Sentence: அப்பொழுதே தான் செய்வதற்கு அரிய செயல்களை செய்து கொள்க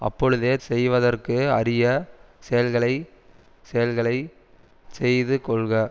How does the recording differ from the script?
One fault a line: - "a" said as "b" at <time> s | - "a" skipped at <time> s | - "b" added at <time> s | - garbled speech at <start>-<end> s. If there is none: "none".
- "தான்" skipped at 0.5 s
- "செயல்களை" added at 3.6 s